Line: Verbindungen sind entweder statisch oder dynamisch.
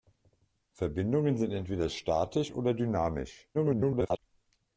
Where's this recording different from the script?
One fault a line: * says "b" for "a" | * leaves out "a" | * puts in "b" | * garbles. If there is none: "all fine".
* garbles